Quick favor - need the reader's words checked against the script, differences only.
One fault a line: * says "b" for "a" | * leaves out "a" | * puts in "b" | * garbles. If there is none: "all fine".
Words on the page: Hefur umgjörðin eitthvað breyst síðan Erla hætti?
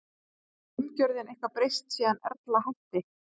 all fine